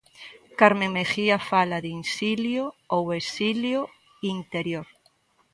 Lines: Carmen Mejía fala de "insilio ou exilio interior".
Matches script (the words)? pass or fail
pass